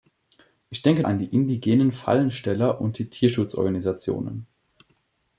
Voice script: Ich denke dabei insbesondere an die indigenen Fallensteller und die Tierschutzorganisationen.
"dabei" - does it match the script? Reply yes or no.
no